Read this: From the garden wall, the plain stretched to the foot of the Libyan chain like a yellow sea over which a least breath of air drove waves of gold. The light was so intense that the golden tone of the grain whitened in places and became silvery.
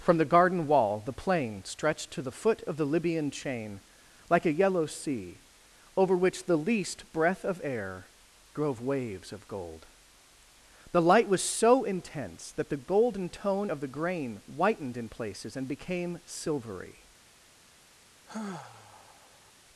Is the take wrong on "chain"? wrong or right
right